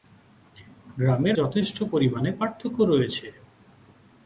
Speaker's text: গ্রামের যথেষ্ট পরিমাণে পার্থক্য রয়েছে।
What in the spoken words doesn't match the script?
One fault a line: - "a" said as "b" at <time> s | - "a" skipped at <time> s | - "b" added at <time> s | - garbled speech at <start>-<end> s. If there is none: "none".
none